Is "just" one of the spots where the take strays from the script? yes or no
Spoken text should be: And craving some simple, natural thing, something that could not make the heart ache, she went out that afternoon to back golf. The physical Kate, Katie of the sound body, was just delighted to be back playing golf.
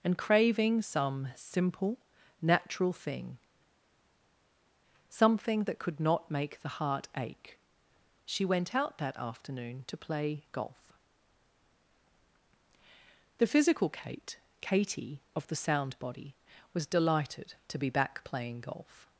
yes